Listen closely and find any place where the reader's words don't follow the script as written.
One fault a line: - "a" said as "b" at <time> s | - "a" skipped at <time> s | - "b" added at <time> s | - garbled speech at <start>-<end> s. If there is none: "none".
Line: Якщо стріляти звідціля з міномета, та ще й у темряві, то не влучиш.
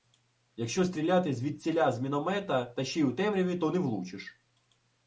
none